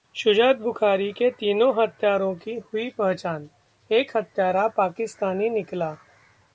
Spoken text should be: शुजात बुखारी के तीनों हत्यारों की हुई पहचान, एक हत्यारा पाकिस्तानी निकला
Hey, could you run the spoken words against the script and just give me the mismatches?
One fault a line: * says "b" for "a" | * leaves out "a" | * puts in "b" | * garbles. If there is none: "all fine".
all fine